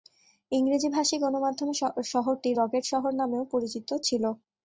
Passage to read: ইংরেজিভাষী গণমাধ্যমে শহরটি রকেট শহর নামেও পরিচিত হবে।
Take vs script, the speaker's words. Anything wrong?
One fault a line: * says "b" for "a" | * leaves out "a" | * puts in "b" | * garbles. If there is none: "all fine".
* says "ছিল" for "হবে"